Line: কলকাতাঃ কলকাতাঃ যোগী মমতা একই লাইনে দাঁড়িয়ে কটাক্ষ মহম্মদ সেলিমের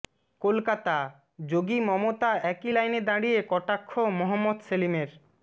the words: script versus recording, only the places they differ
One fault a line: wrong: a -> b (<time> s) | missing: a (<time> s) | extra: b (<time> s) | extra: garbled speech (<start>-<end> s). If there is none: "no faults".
missing: কলকাতাঃ (1.0 s)